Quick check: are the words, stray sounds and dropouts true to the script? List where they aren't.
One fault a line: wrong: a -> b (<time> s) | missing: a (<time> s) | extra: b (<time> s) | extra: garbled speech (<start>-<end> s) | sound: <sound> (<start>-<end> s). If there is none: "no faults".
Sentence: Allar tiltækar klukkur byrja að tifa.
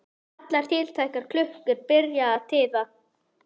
no faults